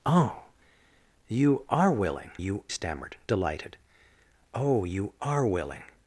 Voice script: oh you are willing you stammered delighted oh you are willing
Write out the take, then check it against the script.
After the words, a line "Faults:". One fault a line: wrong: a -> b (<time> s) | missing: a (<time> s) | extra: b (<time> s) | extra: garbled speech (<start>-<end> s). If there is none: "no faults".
oh you are willing you stammered delighted oh you are willing
Faults:
no faults